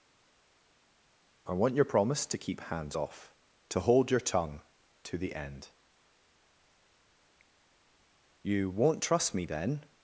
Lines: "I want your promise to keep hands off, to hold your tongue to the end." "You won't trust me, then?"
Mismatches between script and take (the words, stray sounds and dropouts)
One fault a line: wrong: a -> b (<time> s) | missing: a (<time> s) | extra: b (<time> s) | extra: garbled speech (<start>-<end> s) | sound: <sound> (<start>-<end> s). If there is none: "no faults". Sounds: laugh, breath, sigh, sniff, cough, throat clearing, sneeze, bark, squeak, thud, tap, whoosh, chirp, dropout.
no faults